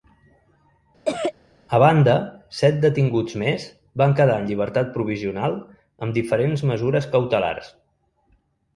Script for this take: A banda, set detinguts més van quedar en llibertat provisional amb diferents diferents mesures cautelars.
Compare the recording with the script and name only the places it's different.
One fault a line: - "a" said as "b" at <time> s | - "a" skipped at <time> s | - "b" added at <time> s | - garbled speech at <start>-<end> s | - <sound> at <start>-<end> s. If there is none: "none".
- cough at 1.0-1.3 s
- "diferents" skipped at 6.7 s